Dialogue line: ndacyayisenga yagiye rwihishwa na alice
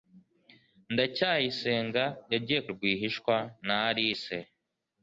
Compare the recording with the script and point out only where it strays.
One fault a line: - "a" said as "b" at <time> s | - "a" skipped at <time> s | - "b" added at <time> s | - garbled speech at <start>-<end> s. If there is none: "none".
none